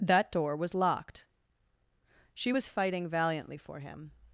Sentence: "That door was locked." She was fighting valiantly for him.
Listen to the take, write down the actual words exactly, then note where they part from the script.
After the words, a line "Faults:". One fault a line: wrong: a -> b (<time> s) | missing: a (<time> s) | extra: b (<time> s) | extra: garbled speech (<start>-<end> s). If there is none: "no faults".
"That door was locked." She was fighting valiantly for him.
Faults:
no faults